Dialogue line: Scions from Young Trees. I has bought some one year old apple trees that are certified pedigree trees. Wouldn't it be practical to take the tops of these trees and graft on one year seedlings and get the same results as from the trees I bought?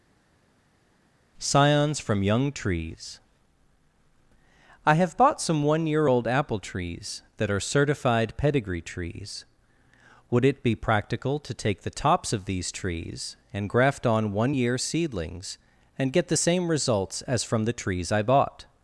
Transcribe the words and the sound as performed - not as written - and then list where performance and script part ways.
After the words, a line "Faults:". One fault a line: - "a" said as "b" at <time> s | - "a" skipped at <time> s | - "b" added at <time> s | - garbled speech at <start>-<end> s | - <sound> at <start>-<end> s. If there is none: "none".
Scions from Young Trees. I have bought some one year old apple trees that are certified pedigree trees. Would it be practical to take the tops of these trees and graft on one year seedlings and get the same results as from the trees I bought?
Faults:
- "has" said as "have" at 4.9 s
- "Wouldn't" said as "Would" at 10.3 s